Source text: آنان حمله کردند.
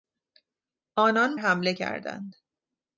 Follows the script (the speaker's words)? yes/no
yes